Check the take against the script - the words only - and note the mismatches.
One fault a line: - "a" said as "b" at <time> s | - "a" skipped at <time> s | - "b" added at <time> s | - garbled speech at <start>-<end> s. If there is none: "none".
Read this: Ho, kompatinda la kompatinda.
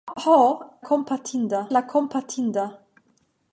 none